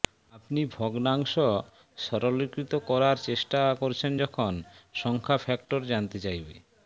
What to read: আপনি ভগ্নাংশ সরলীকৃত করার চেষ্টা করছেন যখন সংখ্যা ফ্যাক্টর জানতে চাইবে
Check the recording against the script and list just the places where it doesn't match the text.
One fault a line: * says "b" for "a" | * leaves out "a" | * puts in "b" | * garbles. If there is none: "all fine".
all fine